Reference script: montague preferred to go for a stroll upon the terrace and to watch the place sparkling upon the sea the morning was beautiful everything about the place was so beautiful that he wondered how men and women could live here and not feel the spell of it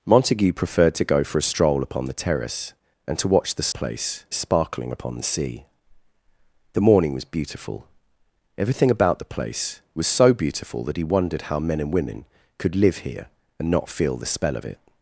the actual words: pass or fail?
pass